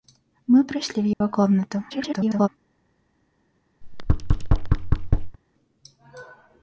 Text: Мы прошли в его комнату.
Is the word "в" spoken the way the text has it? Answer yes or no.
yes